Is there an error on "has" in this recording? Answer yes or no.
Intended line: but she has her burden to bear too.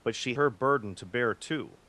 yes